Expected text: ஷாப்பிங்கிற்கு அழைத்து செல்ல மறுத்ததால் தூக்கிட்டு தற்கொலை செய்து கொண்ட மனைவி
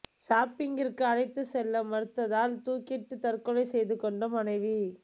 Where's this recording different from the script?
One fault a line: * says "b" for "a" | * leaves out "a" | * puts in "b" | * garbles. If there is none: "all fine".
all fine